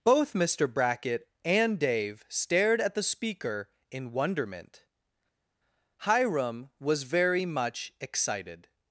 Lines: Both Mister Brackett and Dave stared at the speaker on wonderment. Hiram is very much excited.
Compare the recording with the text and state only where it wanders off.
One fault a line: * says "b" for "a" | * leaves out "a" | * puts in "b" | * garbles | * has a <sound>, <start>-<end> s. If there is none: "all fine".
* says "in" for "on"
* says "was" for "is"